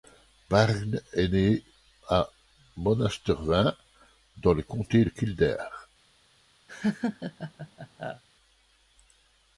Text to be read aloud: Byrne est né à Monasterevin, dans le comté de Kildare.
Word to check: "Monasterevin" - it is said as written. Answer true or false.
true